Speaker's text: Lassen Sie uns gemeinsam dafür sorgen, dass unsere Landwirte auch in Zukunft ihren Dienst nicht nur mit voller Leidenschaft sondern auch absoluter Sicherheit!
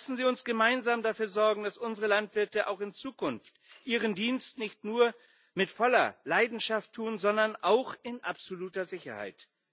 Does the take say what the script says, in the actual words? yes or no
no